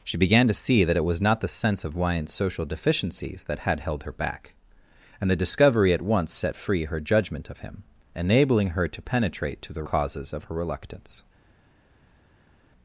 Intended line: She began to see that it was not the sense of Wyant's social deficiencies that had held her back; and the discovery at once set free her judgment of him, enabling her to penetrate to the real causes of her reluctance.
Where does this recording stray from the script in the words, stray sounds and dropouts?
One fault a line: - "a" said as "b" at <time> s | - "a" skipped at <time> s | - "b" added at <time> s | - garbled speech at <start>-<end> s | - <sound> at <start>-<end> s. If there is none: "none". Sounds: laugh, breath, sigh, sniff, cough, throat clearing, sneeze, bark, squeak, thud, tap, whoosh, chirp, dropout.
- "real" skipped at 9.8 s